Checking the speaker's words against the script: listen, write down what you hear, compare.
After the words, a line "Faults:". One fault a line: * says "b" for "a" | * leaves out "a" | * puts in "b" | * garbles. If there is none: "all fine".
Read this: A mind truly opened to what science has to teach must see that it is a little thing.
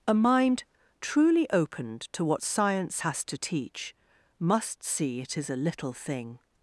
A mind truly opened to what science has to teach must see it is a little thing.
Faults:
* leaves out "that"